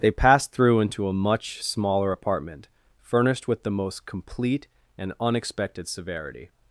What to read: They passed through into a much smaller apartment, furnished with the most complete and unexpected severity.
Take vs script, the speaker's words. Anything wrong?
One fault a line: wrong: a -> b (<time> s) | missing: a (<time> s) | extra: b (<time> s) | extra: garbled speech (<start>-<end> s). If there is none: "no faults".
no faults